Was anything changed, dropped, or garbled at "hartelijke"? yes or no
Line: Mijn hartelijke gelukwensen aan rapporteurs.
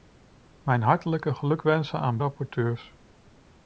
no